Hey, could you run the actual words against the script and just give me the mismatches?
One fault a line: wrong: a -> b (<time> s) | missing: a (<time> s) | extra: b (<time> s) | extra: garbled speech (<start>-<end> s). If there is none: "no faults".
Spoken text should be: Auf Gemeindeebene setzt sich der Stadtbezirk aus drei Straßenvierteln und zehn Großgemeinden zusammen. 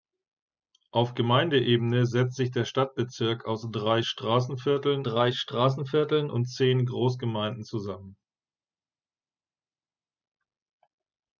extra: drei Straßenvierteln (5.0 s)